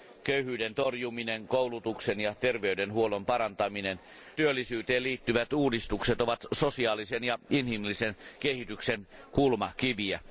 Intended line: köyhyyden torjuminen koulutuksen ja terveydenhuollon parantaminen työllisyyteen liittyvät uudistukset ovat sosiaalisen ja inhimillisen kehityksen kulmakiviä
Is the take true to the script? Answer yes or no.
yes